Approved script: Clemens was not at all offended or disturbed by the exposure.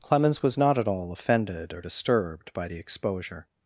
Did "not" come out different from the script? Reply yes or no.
no